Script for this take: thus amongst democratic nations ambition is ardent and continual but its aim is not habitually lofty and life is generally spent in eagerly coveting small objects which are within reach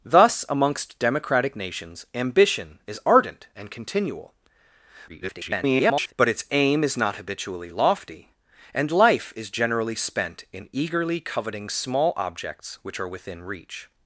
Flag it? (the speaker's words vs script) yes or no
yes